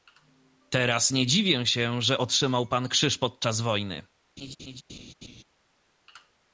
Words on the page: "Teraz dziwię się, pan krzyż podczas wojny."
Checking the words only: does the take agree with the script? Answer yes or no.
no